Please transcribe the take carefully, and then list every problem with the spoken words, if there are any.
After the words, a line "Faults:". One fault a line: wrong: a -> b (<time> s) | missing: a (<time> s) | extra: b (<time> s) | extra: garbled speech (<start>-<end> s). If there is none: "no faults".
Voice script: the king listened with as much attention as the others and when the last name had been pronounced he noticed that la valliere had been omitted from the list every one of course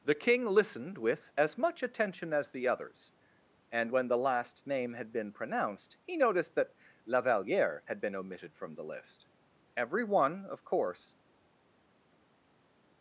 the king listened with as much attention as the others and when the last name had been pronounced he noticed that la valliere had been omitted from the list every one of course
Faults:
no faults